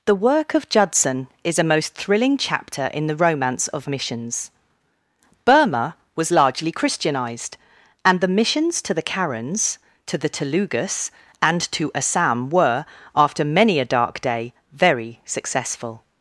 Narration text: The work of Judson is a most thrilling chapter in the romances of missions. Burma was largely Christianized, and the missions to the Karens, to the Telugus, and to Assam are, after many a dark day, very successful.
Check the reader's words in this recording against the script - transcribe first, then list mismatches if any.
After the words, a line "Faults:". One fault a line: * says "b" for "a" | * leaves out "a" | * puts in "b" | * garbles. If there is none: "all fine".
The work of Judson is a most thrilling chapter in the romance of missions. Burma was largely Christianized, and the missions to the Karens, to the Telugus, and to Assam were, after many a dark day, very successful.
Faults:
* says "romance" for "romances"
* says "were" for "are"